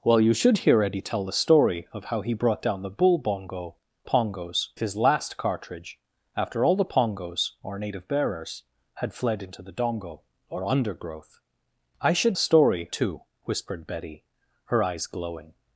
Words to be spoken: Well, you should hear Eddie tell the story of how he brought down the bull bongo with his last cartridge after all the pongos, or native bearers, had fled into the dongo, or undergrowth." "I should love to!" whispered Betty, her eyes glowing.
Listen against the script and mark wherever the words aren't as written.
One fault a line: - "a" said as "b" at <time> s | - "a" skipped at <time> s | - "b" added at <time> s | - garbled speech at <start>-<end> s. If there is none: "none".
- "with" said as "pongos" at 4.0 s
- "love" said as "story" at 12.4 s